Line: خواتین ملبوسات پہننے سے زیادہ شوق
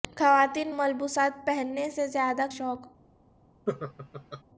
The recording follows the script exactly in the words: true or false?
true